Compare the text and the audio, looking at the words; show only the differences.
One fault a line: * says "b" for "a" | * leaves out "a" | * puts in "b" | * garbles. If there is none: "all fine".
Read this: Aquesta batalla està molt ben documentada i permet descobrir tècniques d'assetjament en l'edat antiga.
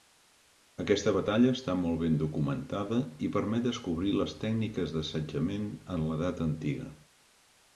* puts in "les"